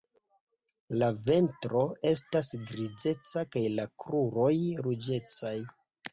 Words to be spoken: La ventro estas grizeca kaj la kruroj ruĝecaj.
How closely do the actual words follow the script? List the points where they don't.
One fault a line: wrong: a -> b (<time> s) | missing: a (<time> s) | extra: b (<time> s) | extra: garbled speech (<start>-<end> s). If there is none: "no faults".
no faults